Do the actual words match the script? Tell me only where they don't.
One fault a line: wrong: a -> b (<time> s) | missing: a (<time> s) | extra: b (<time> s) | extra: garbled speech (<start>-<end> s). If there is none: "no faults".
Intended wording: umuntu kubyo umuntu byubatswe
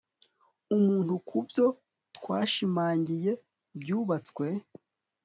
wrong: umuntu -> twashimangiye (2.2 s)